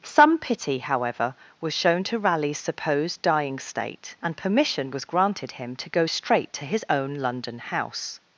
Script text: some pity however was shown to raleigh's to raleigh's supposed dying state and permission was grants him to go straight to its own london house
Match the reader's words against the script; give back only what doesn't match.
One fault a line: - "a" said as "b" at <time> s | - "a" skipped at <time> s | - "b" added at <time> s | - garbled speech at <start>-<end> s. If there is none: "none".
- "to raleigh's" skipped at 2.6 s
- "grants" said as "granted" at 5.0 s
- "its" said as "his" at 6.6 s